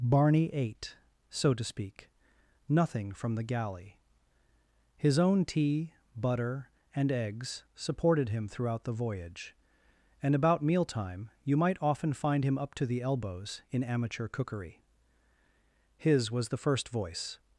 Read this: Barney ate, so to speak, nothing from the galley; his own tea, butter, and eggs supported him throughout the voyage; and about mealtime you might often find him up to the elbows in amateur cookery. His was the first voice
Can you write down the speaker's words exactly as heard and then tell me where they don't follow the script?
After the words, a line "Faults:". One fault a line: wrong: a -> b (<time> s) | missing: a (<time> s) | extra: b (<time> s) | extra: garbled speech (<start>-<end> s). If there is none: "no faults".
Barney ate, so to speak, nothing from the galley; his own tea, butter, and eggs supported him throughout the voyage; and about mealtime you might often find him up to the elbows in amateur cookery. His was the first voice
Faults:
no faults